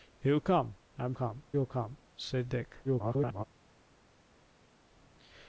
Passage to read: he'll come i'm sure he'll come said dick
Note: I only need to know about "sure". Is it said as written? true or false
false